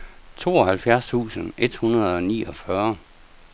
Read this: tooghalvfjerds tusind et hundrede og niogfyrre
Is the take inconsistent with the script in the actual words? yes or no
no